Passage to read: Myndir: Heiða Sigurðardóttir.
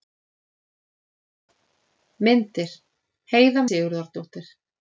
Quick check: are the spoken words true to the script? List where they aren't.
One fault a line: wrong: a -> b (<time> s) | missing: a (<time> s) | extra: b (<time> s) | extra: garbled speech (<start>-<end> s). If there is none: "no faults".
no faults